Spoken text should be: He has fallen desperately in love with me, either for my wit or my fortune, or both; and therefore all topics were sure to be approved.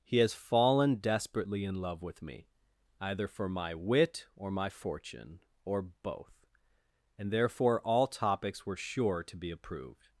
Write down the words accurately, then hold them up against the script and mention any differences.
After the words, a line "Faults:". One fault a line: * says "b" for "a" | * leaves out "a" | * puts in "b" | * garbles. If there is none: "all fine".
He has fallen desperately in love with me, either for my wit or my fortune, or both; and therefore all topics were sure to be approved.
Faults:
all fine